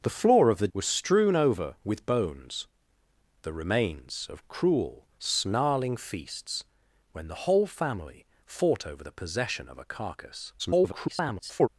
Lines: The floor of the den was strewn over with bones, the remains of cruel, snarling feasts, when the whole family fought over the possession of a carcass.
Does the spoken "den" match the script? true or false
false